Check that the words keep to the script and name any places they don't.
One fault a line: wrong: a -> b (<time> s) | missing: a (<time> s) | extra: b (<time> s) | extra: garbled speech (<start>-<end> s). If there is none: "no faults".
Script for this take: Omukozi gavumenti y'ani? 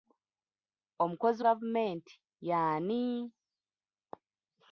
no faults